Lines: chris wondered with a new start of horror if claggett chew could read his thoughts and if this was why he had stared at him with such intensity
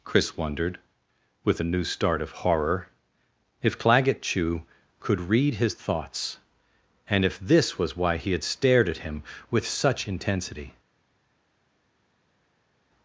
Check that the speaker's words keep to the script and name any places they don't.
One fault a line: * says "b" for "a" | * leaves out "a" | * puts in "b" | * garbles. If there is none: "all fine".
all fine